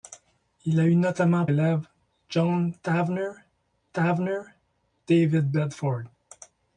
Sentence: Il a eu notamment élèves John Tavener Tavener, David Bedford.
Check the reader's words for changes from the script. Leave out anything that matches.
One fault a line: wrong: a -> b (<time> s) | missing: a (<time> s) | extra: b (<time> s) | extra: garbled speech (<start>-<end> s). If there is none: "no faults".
no faults